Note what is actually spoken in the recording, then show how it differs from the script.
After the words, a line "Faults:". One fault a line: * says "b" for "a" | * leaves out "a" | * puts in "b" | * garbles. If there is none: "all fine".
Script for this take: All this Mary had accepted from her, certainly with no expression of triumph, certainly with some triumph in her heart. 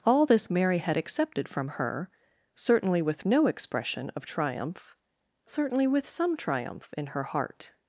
All this Mary had accepted from her, certainly with no expression of triumph, certainly with some triumph in her heart.
Faults:
all fine